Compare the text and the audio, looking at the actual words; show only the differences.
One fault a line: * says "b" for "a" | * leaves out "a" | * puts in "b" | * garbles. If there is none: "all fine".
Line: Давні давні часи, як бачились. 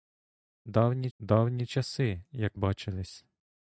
all fine